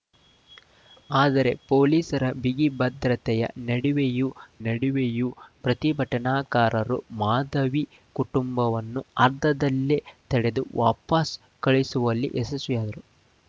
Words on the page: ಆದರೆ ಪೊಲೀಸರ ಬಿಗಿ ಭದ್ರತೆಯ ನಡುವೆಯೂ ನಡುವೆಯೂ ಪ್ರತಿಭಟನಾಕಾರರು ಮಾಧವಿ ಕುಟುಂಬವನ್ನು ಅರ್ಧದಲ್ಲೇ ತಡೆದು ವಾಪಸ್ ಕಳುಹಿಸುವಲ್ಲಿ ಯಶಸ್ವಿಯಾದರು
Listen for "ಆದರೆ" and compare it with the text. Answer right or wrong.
right